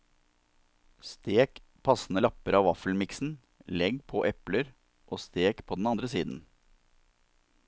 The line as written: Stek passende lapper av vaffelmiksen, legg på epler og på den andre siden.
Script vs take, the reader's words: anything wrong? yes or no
yes